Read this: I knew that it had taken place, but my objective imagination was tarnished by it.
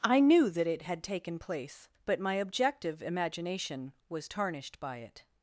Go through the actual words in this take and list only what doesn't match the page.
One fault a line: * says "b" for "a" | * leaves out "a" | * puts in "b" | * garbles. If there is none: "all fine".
all fine